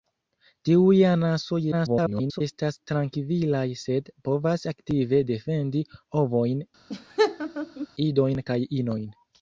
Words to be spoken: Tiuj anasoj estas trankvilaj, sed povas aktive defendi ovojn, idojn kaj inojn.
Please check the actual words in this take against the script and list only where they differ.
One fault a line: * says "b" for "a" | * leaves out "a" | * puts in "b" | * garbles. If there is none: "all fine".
* garbles